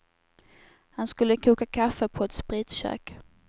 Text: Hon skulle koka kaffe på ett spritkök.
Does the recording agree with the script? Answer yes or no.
no